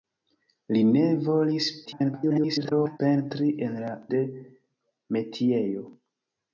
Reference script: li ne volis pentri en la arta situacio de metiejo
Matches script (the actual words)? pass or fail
fail